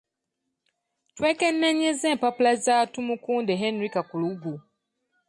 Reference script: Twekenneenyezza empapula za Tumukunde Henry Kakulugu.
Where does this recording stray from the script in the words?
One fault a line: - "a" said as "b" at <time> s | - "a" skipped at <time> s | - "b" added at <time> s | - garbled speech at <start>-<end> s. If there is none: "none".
none